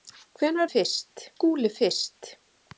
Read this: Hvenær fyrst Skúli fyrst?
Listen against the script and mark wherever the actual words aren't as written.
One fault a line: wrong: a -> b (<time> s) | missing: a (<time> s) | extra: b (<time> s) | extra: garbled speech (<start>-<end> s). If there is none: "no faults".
no faults